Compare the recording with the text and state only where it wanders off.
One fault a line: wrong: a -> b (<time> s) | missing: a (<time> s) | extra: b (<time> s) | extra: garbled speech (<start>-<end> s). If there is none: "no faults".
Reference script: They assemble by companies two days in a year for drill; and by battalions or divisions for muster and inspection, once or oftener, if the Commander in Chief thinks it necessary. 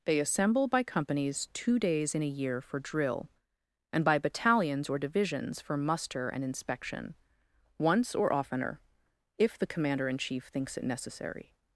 no faults